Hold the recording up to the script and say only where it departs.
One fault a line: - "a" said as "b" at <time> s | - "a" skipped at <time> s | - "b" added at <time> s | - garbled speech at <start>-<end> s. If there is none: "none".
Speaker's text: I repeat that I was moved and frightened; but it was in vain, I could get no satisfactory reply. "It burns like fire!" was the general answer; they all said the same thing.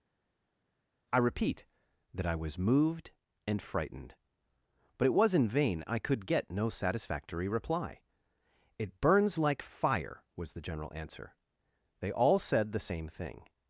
none